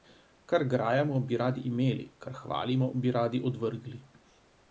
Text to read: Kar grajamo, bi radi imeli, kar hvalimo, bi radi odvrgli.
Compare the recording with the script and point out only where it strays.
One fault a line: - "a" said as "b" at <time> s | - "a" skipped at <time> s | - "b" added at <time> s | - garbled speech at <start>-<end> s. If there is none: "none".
none